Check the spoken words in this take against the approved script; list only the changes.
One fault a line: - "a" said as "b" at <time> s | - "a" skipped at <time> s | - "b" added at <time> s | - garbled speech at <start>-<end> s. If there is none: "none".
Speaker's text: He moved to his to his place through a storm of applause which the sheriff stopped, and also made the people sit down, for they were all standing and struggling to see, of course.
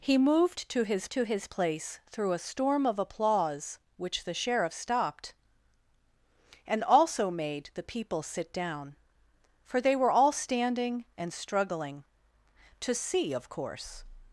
none